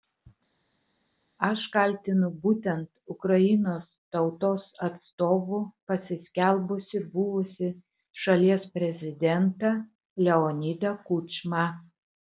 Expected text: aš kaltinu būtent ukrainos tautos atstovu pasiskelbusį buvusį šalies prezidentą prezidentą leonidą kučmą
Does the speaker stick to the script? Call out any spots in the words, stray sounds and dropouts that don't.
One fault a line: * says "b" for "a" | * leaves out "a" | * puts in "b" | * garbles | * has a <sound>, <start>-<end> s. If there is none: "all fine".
* leaves out "prezidentą"